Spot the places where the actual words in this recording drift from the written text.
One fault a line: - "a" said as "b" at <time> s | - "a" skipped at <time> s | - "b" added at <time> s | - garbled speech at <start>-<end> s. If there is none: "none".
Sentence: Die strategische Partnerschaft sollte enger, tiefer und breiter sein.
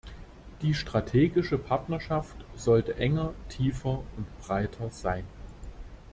none